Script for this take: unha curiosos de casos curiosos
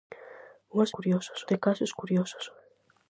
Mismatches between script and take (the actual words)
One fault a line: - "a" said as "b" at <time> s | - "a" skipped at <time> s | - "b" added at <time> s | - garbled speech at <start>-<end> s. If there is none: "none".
none